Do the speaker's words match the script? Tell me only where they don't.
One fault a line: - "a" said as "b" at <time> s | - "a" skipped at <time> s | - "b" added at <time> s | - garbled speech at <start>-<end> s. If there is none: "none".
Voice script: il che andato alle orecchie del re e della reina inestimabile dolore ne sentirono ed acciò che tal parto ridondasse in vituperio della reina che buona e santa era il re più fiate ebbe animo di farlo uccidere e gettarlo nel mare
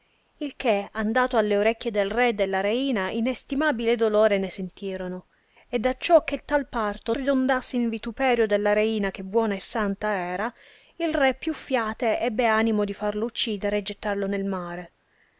none